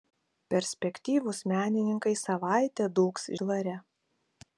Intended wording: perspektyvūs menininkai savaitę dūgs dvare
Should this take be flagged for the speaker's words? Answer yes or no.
no